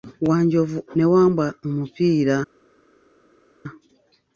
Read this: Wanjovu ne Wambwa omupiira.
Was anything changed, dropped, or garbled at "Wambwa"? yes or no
no